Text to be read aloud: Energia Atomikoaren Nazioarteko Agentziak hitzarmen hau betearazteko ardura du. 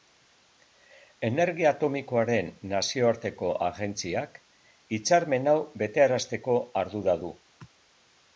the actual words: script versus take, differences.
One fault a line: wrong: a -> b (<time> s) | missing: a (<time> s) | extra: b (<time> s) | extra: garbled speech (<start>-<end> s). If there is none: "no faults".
no faults